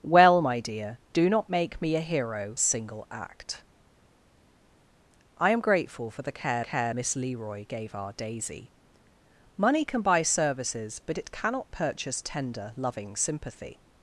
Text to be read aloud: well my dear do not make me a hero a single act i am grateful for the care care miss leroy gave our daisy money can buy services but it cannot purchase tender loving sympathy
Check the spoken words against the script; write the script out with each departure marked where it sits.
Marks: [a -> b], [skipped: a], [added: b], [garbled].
well my dear do not make me a hero a single act i am grateful for the care care miss leroy gave our daisy money can buy services but it cannot purchase tender loving sympathy